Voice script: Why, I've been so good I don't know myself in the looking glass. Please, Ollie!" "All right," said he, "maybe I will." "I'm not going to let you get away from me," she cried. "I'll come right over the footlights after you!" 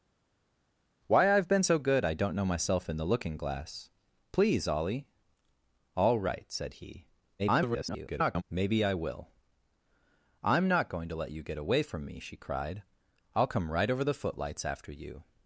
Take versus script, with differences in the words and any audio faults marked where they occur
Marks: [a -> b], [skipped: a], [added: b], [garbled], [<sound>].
Why, I've been so good I don't know myself in the looking glass. Please, Ollie!" "All right," said he, [garbled] "maybe I will." "I'm not going to let you get away from me," she cried. "I'll come right over the footlights after you!"